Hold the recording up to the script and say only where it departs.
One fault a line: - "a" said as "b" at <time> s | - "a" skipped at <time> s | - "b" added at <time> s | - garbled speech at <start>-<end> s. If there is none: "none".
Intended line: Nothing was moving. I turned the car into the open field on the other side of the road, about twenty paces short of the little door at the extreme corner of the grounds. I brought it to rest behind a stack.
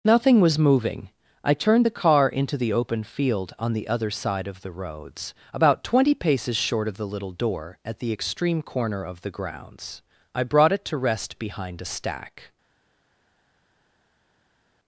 - "road" said as "roads" at 4.7 s